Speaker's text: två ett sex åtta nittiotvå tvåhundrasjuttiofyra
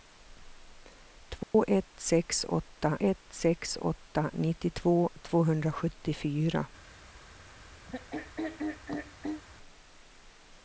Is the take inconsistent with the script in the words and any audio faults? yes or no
yes